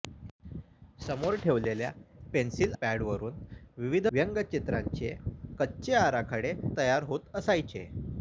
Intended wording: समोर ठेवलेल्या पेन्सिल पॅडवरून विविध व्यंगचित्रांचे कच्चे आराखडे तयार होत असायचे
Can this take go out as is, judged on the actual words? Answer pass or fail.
pass